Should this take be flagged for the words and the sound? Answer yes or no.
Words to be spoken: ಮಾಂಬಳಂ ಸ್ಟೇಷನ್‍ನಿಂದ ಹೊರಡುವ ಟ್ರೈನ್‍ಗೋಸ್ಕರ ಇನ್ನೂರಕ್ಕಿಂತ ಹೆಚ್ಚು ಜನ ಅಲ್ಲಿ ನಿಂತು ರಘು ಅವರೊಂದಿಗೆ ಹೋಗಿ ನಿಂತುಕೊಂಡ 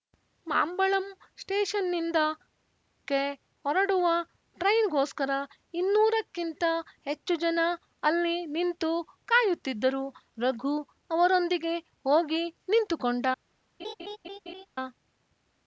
yes